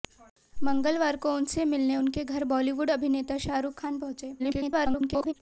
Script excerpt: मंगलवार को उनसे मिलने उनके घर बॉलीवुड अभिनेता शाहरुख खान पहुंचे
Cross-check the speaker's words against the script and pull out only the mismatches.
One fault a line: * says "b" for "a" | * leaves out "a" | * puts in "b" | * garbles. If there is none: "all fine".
* garbles